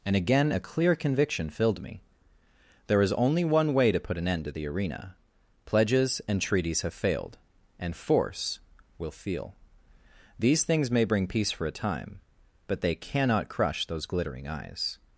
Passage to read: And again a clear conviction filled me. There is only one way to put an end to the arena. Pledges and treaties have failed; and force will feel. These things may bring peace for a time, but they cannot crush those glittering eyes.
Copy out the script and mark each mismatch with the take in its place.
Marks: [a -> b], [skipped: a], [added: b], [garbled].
And again a clear conviction filled me. There is only one way to put an end to the arena. Pledges and treaties have failed; and force will feel. These things may bring peace for a time, but they cannot crush those glittering eyes.